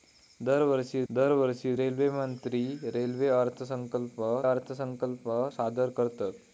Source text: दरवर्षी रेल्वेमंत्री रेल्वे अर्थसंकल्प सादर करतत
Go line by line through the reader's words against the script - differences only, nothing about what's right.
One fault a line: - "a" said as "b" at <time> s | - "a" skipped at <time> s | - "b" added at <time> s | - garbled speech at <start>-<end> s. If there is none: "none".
- "दरवर्षी" added at 1.1 s
- "अर्थसंकल्प" added at 4.5 s